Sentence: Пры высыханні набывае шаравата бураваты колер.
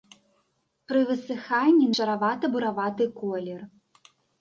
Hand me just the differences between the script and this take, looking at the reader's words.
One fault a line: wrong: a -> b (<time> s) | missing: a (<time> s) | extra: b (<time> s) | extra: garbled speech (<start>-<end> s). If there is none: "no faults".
missing: набывае (1.9 s)